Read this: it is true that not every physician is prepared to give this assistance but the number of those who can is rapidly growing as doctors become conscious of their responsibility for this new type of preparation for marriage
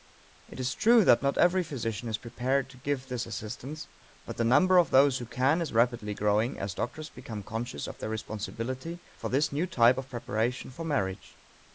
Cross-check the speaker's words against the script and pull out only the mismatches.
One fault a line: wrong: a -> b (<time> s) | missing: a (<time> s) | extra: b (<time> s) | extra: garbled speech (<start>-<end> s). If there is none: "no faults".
no faults